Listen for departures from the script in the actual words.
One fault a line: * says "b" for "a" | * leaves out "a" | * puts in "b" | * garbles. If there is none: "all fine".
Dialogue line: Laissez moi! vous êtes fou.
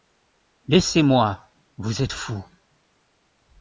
all fine